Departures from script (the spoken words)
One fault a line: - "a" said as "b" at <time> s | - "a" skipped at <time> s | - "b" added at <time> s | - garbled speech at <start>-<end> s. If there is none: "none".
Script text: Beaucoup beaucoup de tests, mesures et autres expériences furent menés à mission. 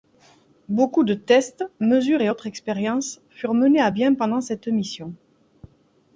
- "beaucoup" skipped at 1.0 s
- "bien pendant cette" added at 3.9 s